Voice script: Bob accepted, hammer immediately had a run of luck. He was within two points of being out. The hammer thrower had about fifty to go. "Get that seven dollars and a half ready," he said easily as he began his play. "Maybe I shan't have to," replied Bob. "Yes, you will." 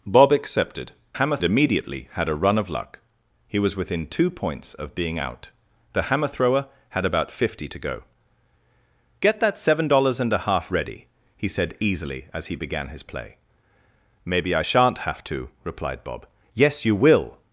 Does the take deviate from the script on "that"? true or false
false